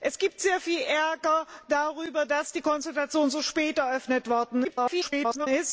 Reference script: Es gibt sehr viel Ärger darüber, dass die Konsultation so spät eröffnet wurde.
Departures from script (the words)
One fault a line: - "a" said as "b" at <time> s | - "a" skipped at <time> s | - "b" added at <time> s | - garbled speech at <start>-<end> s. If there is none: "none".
- garbled speech at 4.6-5.5 s